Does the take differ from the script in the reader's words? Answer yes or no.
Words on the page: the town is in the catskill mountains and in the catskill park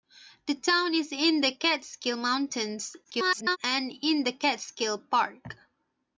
yes